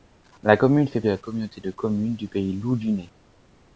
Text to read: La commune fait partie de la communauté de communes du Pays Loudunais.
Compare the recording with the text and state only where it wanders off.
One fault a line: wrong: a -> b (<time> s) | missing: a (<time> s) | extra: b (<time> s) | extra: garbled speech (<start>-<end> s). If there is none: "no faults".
missing: partie (1.0 s)